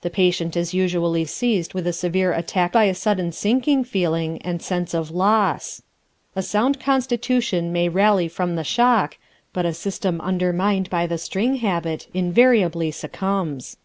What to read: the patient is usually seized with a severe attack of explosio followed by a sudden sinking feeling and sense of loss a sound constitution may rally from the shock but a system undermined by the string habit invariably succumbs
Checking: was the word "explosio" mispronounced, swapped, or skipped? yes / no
yes